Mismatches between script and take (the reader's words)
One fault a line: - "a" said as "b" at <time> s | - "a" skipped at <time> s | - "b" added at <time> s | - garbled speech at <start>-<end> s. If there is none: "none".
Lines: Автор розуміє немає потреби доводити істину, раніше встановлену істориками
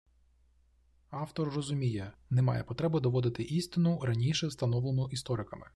none